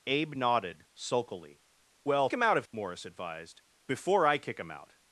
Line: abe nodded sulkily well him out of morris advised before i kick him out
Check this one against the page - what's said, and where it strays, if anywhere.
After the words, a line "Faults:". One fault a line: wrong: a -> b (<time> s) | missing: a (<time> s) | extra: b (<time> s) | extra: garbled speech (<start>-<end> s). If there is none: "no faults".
abe nodded sulkily well him out of morris advised before i kick him out
Faults:
no faults